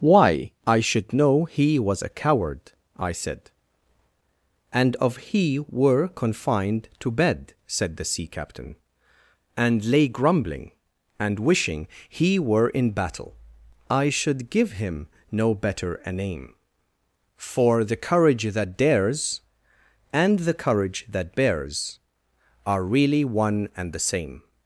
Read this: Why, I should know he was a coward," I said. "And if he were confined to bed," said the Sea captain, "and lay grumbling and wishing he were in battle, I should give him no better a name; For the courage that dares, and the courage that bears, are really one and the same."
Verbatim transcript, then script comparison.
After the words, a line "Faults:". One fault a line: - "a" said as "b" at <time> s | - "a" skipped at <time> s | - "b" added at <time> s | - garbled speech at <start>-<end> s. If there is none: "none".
Why, I should know he was a coward," I said. "And of he were confined to bed," said the Sea captain, "and lay grumbling and wishing he were in battle, I should give him no better a name; For the courage that dares, and the courage that bears, are really one and the same."
Faults:
- "if" said as "of" at 5.0 s